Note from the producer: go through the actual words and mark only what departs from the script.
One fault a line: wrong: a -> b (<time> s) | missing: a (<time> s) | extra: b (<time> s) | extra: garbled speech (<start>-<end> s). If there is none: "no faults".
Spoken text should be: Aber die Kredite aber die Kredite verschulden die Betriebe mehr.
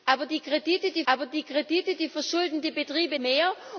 no faults